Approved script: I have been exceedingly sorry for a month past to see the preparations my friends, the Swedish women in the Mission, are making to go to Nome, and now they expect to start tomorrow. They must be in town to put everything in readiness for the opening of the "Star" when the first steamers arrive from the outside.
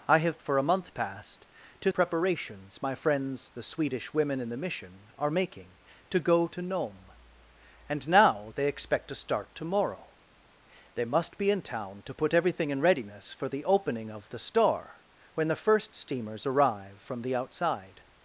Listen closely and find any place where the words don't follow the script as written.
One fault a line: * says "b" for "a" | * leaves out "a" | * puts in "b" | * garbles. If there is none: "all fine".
* leaves out "been exceedingly sorry"
* leaves out "see the"